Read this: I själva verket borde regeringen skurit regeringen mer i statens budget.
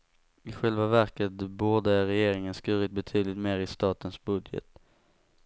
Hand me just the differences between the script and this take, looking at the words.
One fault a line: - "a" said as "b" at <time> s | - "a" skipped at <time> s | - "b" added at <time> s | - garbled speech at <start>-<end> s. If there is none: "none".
- "regeringen" said as "betydligt" at 2.9 s